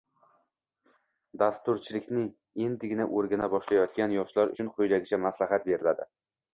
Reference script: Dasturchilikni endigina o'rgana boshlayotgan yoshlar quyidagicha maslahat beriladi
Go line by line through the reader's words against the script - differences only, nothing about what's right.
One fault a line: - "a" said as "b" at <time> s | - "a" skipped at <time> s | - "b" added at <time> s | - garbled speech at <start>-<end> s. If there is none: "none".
- "uchun" added at 4.5 s